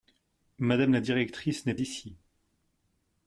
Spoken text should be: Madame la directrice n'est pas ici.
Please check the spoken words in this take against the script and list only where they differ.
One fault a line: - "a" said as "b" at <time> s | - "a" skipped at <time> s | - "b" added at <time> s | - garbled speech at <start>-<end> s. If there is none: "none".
- "pas" skipped at 1.8 s